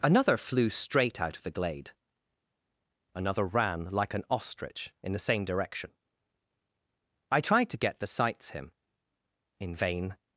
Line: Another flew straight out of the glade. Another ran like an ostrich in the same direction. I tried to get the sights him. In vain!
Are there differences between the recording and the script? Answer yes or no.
no